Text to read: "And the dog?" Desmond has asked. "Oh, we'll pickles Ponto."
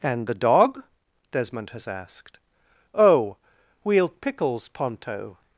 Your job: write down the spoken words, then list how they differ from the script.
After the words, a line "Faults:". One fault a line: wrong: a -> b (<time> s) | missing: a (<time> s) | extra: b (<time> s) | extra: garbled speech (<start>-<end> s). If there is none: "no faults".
"And the dog?" Desmond has asked. "Oh, we'll pickles Ponto."
Faults:
no faults